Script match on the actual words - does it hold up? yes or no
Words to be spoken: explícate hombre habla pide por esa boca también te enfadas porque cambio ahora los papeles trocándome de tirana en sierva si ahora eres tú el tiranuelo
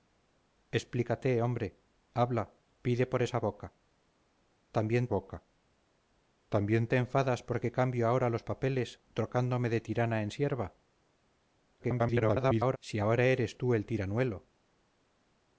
no